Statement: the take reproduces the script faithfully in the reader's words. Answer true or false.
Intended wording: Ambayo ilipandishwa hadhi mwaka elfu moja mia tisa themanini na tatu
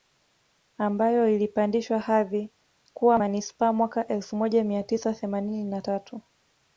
false